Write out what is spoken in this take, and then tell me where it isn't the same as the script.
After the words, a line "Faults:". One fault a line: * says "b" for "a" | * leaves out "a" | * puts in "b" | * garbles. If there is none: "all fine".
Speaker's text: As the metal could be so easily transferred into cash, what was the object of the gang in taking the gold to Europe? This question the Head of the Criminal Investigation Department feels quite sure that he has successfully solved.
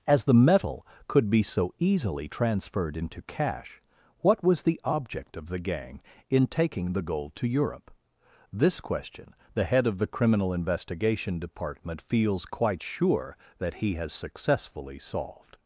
As the metal could be so easily transferred into cash, what was the object of the gang in taking the gold to Europe? This question the Head of the Criminal Investigation Department feels quite sure that he has successfully solved.
Faults:
all fine